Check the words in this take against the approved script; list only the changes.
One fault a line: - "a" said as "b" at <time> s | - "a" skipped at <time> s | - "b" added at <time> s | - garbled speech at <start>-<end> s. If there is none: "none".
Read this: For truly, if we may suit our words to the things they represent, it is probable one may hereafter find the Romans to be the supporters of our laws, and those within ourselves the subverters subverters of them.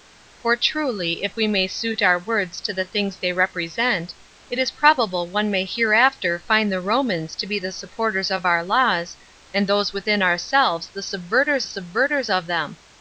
none